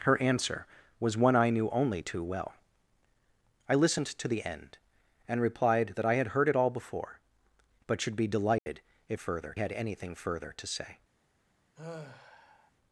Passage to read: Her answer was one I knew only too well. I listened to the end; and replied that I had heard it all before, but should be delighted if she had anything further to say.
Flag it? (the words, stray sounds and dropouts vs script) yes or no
yes